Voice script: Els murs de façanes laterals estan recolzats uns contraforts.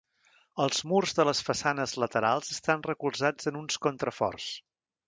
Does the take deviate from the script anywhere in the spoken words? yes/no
yes